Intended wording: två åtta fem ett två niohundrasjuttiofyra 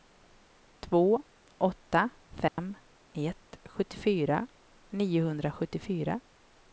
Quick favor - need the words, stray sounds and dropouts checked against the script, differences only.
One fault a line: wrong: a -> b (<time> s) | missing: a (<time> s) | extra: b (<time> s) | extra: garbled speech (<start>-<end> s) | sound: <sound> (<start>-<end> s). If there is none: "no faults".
sound: dropout (2.5-2.6 s)
wrong: två -> sjuttiofyra (3.6 s)